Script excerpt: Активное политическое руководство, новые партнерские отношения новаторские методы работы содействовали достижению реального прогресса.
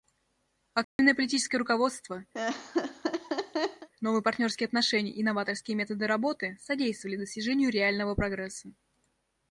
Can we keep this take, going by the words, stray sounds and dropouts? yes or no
no